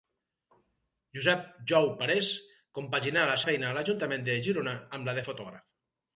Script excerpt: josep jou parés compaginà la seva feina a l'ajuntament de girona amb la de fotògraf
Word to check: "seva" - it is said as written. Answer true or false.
false